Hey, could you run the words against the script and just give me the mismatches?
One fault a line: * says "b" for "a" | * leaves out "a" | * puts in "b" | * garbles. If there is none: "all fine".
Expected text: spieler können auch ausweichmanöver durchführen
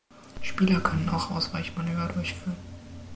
all fine